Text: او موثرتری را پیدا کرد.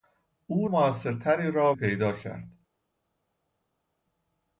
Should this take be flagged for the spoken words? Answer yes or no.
no